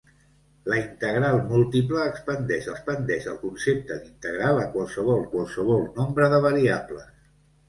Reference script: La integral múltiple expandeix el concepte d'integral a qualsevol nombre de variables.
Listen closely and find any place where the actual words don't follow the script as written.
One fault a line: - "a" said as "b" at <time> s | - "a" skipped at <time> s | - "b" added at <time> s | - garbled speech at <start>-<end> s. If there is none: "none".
- "expandeix" added at 2.7 s
- "qualsevol" added at 5.3 s